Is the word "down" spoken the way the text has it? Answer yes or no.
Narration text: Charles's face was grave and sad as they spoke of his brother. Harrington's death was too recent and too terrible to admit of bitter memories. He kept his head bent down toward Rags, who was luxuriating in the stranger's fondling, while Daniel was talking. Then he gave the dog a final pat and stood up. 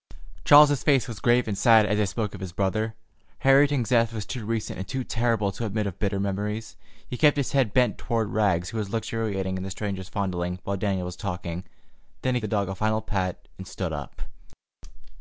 no